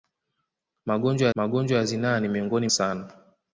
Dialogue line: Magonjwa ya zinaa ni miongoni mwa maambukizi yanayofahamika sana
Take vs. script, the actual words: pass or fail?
fail